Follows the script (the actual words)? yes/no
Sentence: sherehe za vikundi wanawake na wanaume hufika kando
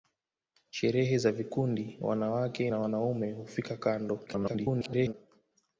no